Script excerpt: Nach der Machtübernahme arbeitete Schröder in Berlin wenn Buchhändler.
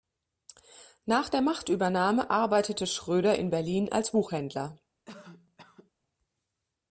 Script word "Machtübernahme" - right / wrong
right